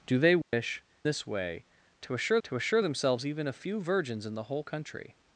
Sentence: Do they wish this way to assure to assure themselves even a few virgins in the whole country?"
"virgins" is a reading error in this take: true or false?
false